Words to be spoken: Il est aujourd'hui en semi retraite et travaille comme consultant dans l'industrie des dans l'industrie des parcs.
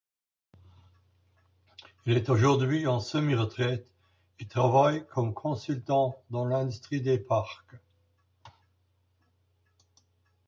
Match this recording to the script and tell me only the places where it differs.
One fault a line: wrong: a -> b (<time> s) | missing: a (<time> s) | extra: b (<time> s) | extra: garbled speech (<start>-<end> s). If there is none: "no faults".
missing: dans l'industrie des (7.2 s)